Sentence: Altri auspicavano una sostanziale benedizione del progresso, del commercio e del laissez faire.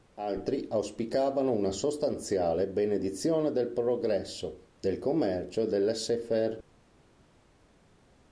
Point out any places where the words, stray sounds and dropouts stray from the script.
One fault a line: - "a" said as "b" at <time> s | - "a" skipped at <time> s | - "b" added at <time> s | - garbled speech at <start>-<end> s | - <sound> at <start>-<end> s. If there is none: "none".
none